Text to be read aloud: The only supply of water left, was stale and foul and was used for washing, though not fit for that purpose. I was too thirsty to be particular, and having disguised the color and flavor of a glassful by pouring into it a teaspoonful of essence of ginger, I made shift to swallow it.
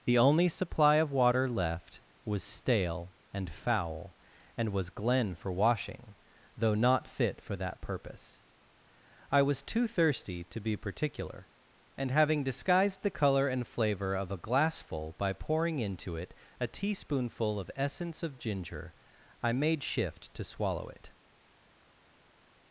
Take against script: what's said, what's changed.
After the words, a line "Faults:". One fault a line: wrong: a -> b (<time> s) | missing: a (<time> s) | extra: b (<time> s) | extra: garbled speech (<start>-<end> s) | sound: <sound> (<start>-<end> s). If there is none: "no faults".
The only supply of water left, was stale and foul and was glen for washing, though not fit for that purpose. I was too thirsty to be particular, and having disguised the color and flavor of a glassful by pouring into it a teaspoonful of essence of ginger, I made shift to swallow it.
Faults:
wrong: used -> glen (4.9 s)